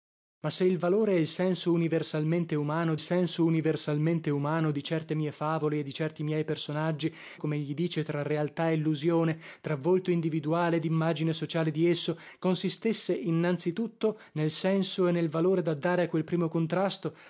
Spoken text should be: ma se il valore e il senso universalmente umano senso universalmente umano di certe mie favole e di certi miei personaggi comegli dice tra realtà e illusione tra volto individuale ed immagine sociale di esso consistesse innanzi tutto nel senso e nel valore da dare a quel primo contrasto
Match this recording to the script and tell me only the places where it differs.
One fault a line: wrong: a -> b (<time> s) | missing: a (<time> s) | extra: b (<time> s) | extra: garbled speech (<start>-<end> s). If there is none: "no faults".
no faults